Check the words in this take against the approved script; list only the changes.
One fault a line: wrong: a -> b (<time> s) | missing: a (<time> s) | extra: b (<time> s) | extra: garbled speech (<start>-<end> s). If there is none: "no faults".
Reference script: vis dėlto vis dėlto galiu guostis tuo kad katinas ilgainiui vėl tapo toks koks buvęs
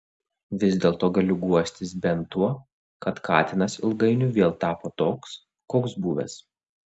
missing: vis dėlto (1.1 s)
extra: bent (2.0 s)